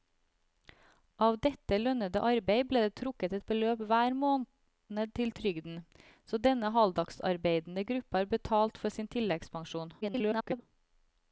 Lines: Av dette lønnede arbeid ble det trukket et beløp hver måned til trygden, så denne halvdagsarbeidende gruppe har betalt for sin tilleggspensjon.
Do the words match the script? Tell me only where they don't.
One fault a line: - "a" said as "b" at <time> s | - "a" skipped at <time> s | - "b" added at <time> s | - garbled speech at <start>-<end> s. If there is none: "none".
- garbled speech at 10.0-10.6 s